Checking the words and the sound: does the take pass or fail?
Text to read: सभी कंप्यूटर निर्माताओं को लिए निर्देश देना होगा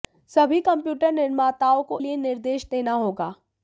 pass